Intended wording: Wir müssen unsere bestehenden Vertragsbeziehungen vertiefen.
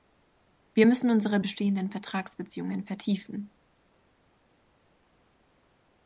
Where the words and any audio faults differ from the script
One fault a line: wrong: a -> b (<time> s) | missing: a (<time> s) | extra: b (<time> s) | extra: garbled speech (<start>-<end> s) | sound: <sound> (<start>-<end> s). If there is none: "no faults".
no faults